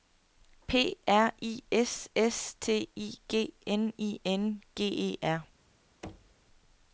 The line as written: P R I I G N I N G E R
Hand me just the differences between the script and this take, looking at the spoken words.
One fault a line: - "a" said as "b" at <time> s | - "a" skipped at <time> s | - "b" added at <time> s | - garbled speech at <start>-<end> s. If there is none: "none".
- "S S T" added at 1.7 s